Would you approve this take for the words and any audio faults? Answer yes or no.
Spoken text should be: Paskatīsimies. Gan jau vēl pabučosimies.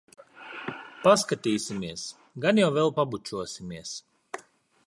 yes